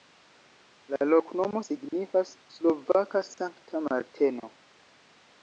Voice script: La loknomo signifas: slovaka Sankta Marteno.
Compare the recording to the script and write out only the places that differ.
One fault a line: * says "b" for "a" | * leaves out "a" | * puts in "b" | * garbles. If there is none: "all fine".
all fine